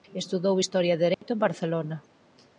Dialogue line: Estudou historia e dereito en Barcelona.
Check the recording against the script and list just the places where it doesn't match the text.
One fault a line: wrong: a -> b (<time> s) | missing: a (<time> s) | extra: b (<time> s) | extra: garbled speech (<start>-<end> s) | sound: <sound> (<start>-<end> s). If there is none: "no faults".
sound: dropout (1.1-1.2 s)